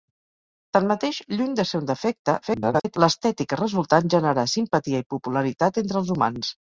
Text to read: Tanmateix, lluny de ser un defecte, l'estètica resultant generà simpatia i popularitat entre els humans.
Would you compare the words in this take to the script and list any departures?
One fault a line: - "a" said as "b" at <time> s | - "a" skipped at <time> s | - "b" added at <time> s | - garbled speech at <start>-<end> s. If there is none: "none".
- garbled speech at 2.4-3.0 s